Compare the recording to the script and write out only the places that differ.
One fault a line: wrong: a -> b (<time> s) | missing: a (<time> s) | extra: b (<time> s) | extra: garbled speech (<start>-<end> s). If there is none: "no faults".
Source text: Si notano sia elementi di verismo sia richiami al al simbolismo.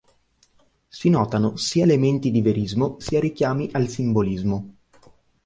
missing: al (3.9 s)